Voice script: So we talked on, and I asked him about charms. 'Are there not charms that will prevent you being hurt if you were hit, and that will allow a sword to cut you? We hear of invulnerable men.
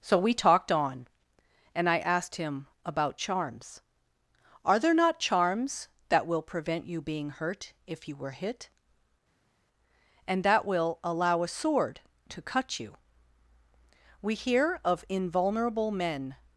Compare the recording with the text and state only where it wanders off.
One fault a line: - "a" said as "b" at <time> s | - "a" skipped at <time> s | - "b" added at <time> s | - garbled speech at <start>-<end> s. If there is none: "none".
none